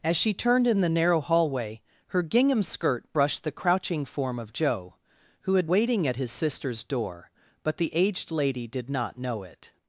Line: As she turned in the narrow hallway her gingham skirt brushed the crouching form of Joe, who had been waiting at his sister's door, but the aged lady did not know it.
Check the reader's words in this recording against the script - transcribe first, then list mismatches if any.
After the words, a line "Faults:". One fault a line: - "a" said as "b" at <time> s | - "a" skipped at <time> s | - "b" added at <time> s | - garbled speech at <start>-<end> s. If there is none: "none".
As she turned in the narrow hallway her gingham skirt brushed the crouching form of Joe, who had waiting at his sister's door, but the aged lady did not know it.
Faults:
- "been" skipped at 5.7 s